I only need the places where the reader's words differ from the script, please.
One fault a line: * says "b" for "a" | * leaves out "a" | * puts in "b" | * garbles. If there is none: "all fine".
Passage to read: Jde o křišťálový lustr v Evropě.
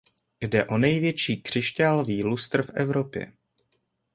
* puts in "největší"